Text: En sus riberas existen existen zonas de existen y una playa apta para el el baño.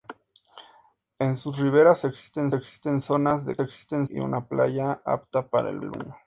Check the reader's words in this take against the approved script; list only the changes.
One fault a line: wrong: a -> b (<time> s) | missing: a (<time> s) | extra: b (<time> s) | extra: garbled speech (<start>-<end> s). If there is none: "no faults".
no faults